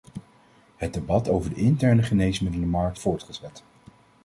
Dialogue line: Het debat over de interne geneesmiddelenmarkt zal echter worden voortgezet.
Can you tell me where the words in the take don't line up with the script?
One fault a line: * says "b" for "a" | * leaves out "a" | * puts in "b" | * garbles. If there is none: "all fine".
* leaves out "zal echter worden"